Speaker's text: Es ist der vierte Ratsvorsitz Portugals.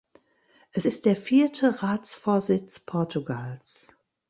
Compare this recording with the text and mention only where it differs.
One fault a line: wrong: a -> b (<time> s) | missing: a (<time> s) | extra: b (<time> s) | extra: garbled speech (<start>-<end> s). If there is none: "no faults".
no faults